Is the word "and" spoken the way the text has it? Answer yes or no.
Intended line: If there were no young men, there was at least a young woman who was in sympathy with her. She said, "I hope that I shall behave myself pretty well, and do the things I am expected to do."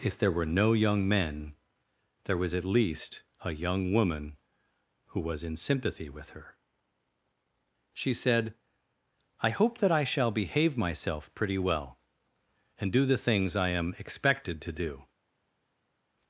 yes